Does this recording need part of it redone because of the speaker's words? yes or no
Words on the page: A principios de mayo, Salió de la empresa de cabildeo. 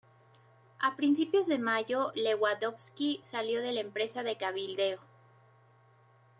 yes